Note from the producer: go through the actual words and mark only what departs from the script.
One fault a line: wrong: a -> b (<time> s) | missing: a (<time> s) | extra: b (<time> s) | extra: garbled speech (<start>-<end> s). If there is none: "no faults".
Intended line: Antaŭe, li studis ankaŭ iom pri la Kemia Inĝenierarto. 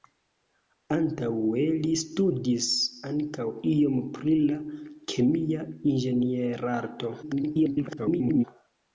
extra: garbled speech (7.2-8.4 s)